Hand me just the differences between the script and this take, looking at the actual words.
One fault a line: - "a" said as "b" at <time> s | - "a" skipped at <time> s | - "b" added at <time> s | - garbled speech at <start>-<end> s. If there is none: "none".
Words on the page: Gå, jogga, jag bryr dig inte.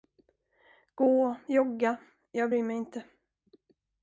- "dig" said as "mig" at 2.6 s